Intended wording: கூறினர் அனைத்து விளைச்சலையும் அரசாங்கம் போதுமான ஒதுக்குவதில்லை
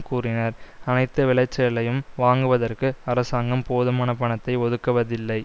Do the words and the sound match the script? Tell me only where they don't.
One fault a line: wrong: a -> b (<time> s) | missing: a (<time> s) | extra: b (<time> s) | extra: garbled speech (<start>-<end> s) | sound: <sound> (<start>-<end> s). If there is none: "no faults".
extra: வாங்குவதற்கு (2.2 s)
extra: பணத்தை (4.2 s)